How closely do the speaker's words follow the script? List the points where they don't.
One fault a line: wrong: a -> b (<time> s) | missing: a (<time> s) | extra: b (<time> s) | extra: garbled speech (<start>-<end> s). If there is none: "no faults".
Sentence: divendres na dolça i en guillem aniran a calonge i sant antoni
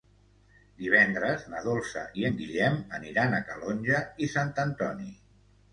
no faults